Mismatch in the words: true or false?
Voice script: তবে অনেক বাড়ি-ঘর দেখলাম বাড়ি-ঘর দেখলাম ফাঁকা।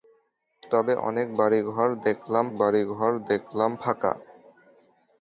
false